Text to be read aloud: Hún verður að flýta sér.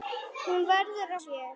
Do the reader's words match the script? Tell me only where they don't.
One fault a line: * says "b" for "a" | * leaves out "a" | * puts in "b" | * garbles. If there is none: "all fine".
* leaves out "að flýta"